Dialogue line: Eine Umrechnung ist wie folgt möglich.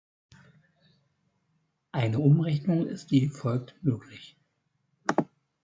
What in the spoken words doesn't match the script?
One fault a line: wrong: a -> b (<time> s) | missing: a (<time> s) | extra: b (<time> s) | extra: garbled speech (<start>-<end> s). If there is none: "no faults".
no faults